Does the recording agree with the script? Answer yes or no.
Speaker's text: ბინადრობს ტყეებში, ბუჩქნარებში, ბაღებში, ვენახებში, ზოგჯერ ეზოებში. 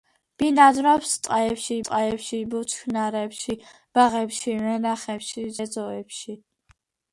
no